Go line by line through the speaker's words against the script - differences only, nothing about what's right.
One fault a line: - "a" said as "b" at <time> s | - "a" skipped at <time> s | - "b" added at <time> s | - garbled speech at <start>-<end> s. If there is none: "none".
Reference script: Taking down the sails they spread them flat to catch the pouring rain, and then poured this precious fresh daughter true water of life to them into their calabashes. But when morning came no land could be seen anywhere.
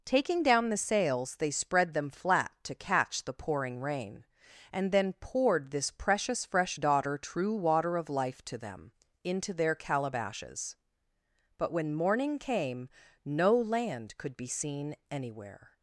none